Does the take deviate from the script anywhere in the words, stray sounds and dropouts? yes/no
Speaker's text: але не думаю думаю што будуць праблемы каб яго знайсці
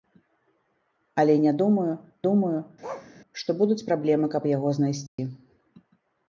yes